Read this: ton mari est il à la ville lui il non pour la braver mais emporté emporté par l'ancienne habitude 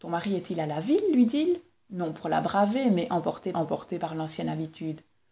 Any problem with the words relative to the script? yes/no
no